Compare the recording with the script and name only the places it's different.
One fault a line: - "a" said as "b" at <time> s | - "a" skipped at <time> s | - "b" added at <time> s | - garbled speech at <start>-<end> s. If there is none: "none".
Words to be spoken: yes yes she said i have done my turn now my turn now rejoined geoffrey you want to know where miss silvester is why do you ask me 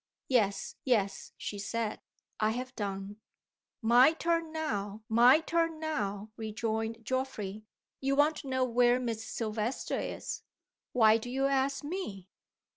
none